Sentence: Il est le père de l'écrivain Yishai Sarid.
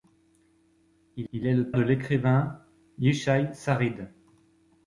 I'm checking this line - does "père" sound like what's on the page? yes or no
no